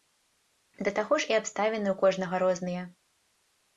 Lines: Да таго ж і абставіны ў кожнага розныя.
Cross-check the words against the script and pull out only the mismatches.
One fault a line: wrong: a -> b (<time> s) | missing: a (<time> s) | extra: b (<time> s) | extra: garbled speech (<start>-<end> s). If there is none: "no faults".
no faults